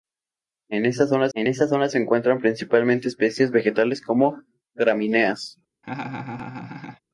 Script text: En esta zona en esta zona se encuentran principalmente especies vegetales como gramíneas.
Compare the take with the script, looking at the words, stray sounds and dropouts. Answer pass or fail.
fail